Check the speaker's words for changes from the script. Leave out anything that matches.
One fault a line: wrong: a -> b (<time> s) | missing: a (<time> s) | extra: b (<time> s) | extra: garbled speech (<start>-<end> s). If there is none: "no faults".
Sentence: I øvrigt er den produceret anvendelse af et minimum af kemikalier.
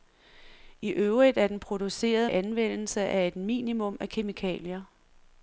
no faults